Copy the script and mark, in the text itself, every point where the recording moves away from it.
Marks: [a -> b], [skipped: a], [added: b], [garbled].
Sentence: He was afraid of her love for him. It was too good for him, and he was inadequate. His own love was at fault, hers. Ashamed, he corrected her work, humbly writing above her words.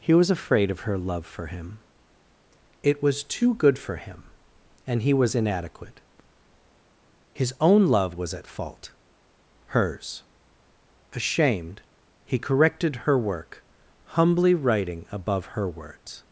He was afraid of her love for him. It was too good for him, and he was inadequate. His own love was at fault, hers. Ashamed, he corrected her work, humbly writing above her words.